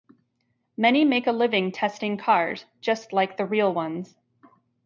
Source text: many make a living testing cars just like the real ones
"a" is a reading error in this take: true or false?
false